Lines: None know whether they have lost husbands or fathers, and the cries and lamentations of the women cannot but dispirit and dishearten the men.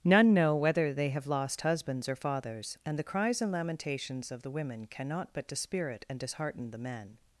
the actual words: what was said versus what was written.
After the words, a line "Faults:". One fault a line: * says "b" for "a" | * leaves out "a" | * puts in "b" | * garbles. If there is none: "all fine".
None know whether they have lost husbands or fathers, and the cries and lamentations of the women cannot but dispirit and dishearten the men.
Faults:
all fine